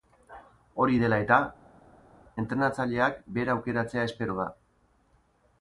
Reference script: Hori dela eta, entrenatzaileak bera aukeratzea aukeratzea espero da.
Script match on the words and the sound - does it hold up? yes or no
no